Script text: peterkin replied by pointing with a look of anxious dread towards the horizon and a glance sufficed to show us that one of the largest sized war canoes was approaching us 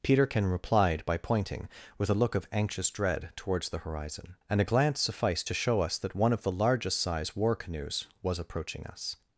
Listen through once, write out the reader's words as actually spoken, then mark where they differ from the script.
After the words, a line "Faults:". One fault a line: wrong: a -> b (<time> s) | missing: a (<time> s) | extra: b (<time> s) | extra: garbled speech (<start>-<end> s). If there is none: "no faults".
peterkin replied by pointing with a look of anxious dread towards the horizon and a glance sufficed to show us that one of the largest size war canoes was approaching us
Faults:
wrong: sized -> size (7.0 s)